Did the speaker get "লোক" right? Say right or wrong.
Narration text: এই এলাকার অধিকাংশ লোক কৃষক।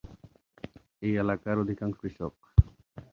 wrong